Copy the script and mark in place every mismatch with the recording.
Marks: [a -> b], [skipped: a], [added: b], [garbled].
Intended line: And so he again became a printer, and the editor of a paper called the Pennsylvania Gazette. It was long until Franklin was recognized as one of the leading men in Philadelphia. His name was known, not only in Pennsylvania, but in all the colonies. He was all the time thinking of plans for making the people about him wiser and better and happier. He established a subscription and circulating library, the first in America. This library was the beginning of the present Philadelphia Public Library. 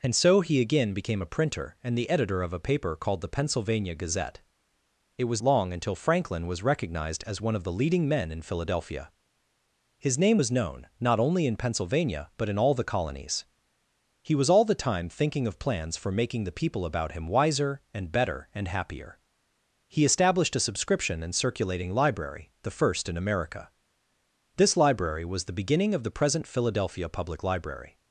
And so he again became a printer, and the editor of a paper called the Pennsylvania Gazette. It was long until Franklin was recognized as one of the leading men in Philadelphia. His name was known, not only in Pennsylvania, but in all the colonies. He was all the time thinking of plans for making the people about him wiser and better and happier. He established a subscription and circulating library, the first in America. This library was the beginning of the present Philadelphia Public Library.